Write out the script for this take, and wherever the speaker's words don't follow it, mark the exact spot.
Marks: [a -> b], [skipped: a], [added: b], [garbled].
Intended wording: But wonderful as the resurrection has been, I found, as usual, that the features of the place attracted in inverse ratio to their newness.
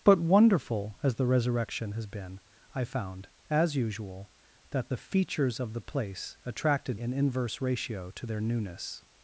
But wonderful as the resurrection has been, I found, as usual, that the features of the place attracted in inverse ratio to their newness.